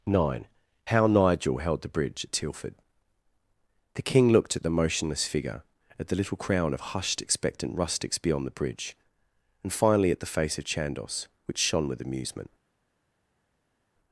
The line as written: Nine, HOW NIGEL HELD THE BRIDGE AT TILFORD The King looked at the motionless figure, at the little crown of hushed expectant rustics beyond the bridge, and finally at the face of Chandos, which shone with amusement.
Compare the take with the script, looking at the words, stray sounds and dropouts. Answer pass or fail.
pass